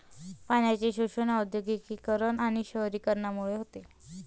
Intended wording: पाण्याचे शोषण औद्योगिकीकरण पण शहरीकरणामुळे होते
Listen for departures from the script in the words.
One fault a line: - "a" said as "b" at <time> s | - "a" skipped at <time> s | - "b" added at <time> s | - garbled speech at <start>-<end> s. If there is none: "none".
- "पण" said as "आणि" at 2.4 s